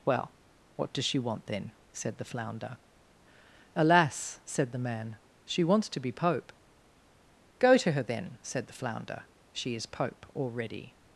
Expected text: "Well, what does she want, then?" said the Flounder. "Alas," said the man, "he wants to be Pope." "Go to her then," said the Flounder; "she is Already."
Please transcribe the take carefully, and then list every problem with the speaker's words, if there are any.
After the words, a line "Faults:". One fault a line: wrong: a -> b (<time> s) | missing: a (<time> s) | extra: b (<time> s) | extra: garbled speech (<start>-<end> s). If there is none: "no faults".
"Well, what does she want, then?" said the Flounder. "Alas," said the man, "she wants to be Pope." "Go to her then," said the Flounder; "she is Pope already."
Faults:
wrong: he -> she (5.5 s)
extra: Pope (9.9 s)